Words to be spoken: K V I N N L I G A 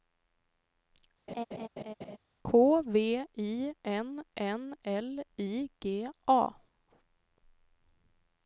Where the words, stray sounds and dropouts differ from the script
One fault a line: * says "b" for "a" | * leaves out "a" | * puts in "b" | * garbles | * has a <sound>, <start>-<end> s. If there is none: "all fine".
* has a laugh, 1.3-2.2 s